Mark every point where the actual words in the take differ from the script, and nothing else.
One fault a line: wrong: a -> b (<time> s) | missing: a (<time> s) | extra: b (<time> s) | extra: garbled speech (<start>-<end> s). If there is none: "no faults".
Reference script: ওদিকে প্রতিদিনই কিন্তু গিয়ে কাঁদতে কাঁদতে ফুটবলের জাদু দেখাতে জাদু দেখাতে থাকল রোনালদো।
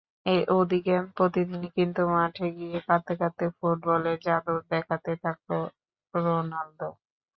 extra: মাঠে (2.1 s)
missing: জাদু দেখাতে (5.1 s)